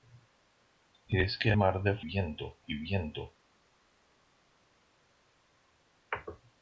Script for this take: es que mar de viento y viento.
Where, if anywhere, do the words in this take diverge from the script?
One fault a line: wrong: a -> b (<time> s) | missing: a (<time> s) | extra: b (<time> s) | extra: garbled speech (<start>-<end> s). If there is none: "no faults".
no faults